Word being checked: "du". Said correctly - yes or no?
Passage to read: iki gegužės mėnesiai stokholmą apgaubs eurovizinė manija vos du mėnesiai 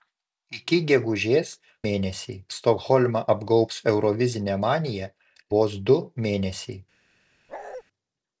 yes